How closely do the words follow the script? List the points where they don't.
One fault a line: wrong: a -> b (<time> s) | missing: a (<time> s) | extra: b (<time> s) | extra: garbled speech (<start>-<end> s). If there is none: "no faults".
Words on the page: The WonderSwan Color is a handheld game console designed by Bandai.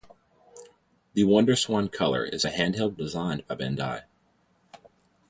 missing: game console (2.9 s)